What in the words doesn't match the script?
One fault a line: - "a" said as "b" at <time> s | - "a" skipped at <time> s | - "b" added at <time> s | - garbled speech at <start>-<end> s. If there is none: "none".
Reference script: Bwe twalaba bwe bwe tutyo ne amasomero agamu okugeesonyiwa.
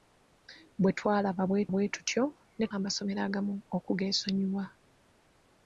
none